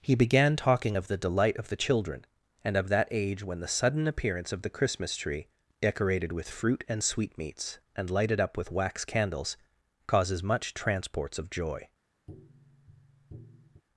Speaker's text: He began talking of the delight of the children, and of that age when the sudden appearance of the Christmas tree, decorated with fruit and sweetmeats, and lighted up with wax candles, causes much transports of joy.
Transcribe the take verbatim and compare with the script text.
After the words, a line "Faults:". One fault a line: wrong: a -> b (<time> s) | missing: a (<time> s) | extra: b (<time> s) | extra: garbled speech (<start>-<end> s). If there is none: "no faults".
He began talking of the delight of the children, and of that age when the sudden appearance of the Christmas tree, decorated with fruit and sweetmeats, and lighted up with wax candles, causes much transports of joy.
Faults:
no faults